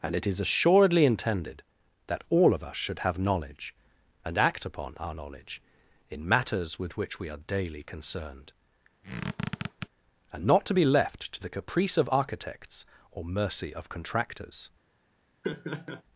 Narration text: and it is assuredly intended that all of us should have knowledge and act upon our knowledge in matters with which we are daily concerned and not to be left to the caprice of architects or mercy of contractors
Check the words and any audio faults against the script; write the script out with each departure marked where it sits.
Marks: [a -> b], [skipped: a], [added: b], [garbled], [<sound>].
and it is assuredly intended that all of us should have knowledge and act upon our knowledge in matters with which we are daily concerned [squeak] and not to be left to the caprice of architects or mercy of contractors [laugh]